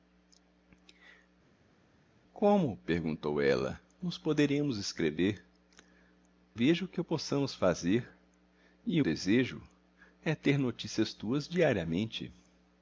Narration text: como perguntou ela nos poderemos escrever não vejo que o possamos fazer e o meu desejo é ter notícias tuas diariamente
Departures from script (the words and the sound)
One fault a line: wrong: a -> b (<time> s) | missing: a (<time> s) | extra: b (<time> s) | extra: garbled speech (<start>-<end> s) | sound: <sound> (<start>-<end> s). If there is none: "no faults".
missing: não (5.4 s)
missing: meu (9.1 s)